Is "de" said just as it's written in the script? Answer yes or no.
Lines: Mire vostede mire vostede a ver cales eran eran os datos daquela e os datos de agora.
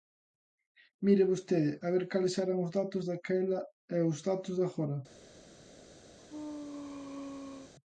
yes